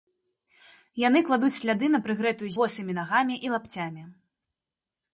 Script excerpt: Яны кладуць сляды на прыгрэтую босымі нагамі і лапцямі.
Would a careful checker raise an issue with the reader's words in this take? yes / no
no